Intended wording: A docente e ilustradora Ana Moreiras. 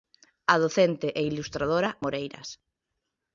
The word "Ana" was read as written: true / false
false